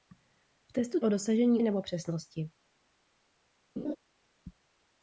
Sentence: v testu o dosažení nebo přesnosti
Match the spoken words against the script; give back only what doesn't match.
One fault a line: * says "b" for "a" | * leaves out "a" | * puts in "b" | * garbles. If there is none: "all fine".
all fine